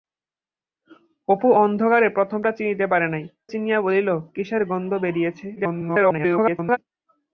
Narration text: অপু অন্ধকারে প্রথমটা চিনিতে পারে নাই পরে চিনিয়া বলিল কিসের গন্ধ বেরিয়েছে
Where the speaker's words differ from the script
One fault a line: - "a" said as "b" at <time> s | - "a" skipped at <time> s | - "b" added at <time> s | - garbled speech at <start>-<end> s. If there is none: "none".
- "পরে" skipped at 3.2 s
- garbled speech at 5.6-6.8 s